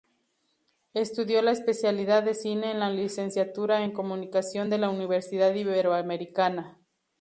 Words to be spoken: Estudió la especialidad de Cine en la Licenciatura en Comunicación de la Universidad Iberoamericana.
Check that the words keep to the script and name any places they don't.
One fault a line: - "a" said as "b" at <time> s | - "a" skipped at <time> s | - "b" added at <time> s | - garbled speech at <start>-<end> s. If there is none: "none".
none